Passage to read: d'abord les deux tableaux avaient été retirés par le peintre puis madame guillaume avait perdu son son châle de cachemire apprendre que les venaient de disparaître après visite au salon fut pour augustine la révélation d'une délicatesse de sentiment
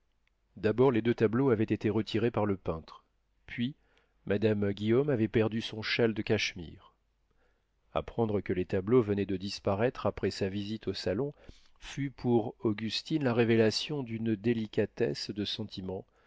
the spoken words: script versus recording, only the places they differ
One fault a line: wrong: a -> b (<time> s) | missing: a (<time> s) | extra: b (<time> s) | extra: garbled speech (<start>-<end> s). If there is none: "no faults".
missing: son (5.8 s)
extra: tableaux (8.7 s)
extra: sa (10.3 s)